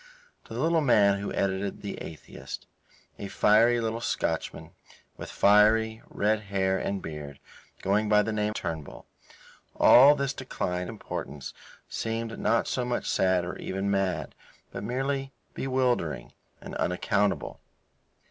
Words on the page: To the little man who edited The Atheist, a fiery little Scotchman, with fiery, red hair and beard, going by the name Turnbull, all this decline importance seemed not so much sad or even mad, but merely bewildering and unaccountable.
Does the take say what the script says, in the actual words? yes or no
yes